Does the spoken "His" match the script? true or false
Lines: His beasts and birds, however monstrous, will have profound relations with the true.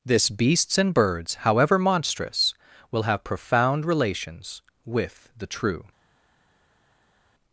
false